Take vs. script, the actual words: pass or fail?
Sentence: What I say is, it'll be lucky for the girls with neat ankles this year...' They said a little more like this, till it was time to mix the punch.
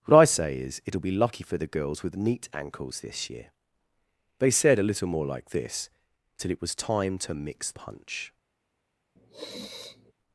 fail